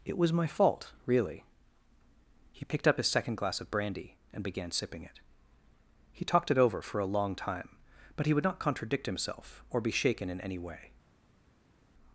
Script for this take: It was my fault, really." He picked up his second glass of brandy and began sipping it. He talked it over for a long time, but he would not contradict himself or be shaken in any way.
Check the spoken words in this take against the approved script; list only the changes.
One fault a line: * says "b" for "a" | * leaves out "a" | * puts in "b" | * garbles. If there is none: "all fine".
all fine